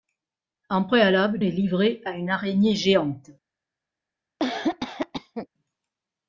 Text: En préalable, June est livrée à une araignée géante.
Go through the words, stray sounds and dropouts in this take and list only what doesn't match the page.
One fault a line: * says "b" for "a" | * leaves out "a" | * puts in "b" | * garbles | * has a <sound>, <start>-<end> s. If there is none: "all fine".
* leaves out "June"
* has a cough, 4.4-5.5 s